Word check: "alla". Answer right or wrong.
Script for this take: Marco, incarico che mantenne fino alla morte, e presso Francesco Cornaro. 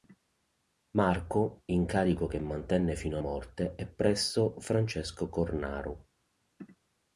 wrong